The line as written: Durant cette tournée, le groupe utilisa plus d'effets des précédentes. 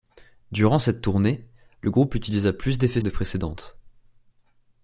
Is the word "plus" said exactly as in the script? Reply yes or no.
yes